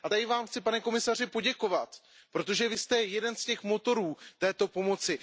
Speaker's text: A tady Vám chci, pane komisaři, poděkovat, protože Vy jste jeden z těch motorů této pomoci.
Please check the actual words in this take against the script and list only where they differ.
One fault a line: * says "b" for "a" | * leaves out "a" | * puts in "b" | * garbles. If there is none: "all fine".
all fine